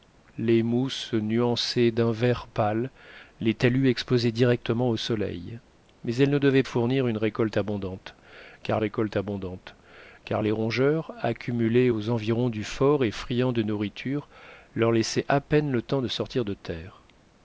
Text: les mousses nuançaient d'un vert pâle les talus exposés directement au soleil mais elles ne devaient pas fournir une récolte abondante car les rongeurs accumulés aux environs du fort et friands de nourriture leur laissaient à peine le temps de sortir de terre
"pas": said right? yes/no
no